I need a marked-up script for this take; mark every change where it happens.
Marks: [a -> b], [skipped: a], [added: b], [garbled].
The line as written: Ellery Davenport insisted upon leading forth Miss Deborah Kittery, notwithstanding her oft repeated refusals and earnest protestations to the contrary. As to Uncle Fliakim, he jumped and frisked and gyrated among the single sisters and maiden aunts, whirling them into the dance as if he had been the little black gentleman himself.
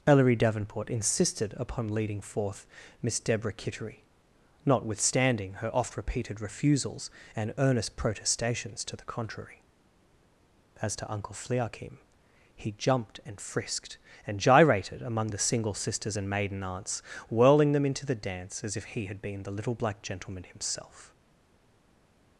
Ellery Davenport insisted upon leading forth Miss Deborah Kittery, notwithstanding her oft repeated refusals and earnest protestations to the contrary. As to Uncle Fliakim, he jumped and frisked and gyrated among the single sisters and maiden aunts, whirling them into the dance as if he had been the little black gentleman himself.